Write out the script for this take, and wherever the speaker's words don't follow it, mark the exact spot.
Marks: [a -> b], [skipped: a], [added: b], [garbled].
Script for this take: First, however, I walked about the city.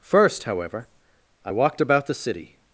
First, however, I walked about the city.